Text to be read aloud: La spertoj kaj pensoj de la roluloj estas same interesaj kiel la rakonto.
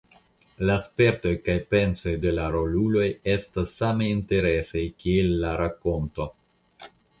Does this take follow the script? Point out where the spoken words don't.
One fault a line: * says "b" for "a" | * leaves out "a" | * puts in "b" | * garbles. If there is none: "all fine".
all fine